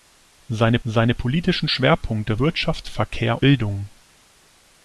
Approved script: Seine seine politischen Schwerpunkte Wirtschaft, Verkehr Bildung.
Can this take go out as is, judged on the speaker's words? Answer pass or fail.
pass